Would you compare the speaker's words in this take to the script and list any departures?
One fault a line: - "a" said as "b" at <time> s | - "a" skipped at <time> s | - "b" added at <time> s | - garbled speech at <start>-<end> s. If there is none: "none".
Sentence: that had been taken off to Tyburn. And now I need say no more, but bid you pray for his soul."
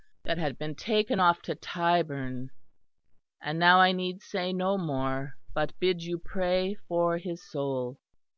none